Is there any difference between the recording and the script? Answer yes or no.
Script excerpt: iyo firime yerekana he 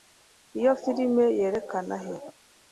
no